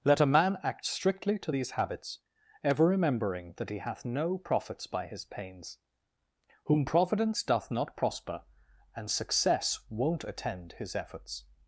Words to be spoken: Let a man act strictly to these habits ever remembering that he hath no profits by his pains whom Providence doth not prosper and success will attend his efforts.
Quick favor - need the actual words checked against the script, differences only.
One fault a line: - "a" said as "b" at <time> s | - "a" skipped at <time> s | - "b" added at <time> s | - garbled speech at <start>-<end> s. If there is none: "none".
- "will" said as "won't" at 9.9 s